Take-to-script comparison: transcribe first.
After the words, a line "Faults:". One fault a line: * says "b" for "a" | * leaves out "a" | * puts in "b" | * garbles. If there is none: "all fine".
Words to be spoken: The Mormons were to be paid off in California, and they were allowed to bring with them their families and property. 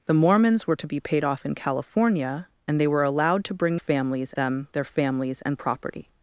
The Mormons were to be paid off in California, and they were allowed to bring families them their families and property.
Faults:
* says "families" for "with"